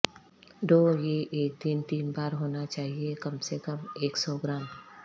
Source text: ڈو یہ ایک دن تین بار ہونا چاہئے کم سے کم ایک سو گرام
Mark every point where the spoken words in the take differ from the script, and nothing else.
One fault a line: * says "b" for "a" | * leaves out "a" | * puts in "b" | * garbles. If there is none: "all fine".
all fine